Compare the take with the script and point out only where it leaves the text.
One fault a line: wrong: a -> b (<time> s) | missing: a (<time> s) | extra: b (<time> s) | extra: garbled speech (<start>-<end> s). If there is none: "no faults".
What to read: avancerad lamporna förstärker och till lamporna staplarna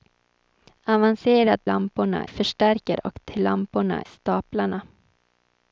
no faults